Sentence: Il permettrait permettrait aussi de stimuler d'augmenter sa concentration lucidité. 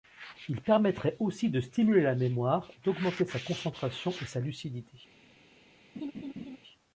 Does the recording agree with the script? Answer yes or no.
no